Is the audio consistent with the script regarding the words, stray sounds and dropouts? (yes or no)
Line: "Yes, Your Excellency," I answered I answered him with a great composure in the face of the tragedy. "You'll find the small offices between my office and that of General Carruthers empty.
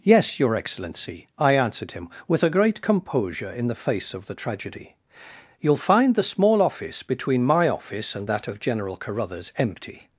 no